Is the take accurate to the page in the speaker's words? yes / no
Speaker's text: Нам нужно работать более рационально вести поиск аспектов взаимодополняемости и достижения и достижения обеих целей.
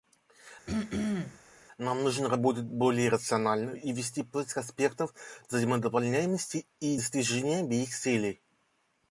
no